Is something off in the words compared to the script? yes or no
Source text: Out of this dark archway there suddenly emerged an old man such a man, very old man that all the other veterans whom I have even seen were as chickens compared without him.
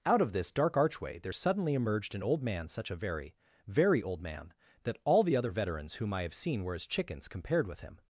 yes